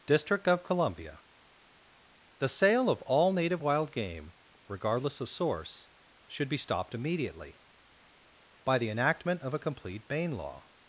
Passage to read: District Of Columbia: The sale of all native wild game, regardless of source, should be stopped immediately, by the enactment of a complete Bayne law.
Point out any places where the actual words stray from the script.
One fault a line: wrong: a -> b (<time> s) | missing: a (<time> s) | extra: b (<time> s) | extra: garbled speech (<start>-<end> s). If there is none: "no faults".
no faults